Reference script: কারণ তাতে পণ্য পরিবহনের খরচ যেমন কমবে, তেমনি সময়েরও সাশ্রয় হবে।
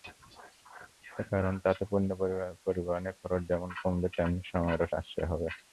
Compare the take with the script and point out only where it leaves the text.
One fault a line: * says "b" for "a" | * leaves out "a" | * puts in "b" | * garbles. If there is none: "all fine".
all fine